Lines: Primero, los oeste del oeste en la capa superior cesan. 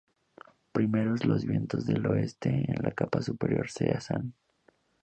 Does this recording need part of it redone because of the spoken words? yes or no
yes